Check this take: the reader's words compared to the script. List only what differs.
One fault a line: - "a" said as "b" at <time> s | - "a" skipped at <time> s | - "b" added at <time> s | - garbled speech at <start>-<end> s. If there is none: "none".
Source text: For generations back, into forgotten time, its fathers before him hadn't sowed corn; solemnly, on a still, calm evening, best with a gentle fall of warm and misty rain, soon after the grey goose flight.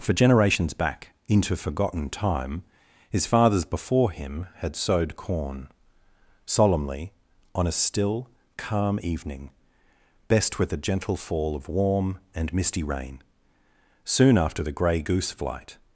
- "its" said as "his" at 3.1 s
- "hadn't" said as "had" at 4.5 s